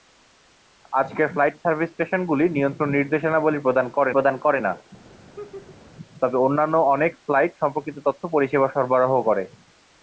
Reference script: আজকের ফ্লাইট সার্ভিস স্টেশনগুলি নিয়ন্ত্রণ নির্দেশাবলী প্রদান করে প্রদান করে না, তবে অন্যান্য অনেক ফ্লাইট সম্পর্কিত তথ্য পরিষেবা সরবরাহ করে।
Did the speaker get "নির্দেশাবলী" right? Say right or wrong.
right